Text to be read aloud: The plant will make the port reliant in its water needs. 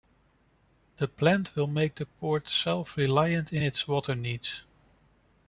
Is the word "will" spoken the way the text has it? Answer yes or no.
yes